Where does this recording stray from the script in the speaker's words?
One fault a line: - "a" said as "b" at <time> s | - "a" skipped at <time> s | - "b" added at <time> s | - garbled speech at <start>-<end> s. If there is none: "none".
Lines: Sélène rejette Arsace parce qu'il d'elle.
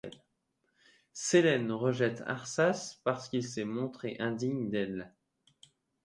- "s'est montré indigne" added at 3.4 s